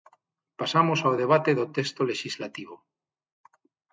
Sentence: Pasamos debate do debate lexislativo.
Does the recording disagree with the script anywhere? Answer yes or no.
yes